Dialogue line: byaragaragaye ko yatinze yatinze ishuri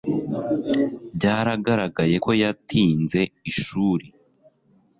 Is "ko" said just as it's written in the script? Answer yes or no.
yes